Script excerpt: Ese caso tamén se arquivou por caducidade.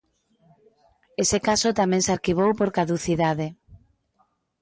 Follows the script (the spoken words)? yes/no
yes